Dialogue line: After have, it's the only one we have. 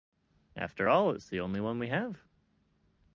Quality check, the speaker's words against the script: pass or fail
fail